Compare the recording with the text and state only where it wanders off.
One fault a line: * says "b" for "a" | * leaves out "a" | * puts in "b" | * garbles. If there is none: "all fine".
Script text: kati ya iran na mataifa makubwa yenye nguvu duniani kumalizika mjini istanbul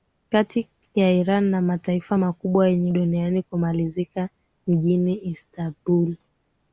* leaves out "nguvu"